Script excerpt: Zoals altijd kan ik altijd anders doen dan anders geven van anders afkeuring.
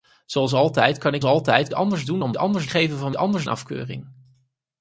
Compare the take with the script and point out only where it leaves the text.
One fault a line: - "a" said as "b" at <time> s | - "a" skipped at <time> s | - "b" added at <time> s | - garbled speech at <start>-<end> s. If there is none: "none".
none